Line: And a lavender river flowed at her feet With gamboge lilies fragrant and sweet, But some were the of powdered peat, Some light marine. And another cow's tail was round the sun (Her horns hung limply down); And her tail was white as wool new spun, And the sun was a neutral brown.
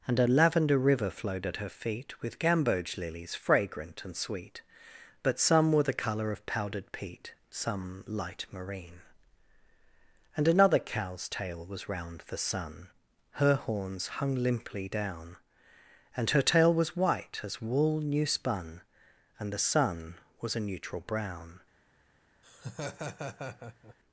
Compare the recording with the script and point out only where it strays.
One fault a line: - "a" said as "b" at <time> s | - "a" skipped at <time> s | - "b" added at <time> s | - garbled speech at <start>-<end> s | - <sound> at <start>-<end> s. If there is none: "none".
- "color" added at 5.9 s
- laugh at 22.4-24.0 s